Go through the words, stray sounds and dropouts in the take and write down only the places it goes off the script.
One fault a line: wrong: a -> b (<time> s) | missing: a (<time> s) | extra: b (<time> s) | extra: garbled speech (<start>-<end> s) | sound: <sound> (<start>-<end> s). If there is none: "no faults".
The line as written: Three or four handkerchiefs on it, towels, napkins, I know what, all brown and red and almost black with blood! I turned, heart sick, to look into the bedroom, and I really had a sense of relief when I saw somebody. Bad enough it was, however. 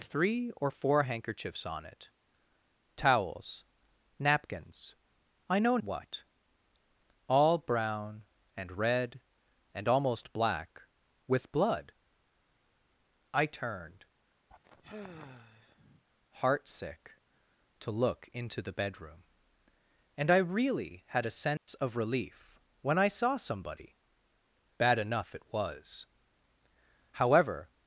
sound: sigh (14.5-16.0 s)
sound: dropout (21.6-21.7 s)